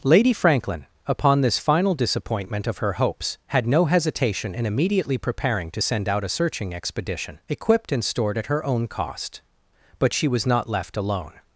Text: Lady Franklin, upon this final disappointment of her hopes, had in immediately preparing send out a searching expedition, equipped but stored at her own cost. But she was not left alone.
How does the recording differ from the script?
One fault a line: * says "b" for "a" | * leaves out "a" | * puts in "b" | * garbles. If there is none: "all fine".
* puts in "no hesitation"
* puts in "to"
* says "and" for "but"